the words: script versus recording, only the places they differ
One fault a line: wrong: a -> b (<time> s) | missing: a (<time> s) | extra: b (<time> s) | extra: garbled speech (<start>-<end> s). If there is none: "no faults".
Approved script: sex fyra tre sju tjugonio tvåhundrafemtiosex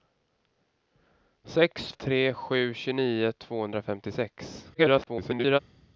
missing: fyra (1.9 s)
extra: garbled speech (4.7-5.6 s)